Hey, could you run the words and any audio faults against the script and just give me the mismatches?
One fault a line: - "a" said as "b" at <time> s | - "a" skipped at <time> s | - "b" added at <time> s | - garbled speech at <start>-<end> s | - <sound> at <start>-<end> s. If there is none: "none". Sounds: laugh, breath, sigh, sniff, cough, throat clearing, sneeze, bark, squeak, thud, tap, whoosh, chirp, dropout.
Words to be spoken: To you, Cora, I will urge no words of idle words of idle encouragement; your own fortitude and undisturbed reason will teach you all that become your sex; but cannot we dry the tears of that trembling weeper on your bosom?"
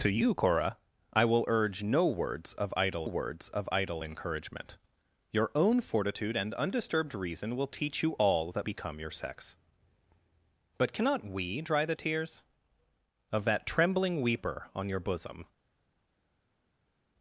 none